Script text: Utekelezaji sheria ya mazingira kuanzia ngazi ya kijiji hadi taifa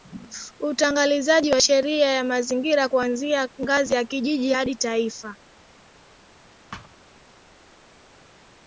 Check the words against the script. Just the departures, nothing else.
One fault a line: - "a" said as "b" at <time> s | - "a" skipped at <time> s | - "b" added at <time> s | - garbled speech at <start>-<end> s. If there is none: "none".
- "wa" added at 1.5 s